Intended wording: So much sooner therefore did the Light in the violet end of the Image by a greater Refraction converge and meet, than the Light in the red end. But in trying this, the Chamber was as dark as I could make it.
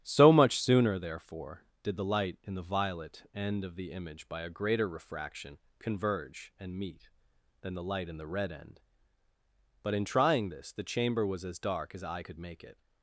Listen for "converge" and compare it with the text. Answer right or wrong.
right